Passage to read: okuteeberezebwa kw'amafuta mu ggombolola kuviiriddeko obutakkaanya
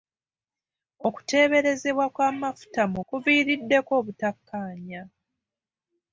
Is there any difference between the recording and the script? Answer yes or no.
yes